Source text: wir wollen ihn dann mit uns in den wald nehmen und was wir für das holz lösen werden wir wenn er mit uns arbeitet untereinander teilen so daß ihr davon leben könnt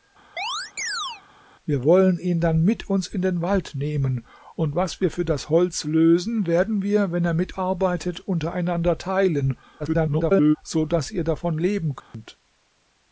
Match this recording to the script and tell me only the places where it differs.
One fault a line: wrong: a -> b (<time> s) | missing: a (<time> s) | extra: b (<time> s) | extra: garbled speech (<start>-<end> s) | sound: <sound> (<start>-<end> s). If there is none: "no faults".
sound: chirp (0.4-1.2 s)
missing: uns (7.5 s)
extra: garbled speech (9.8-10.6 s)
sound: dropout (12.0-12.1 s)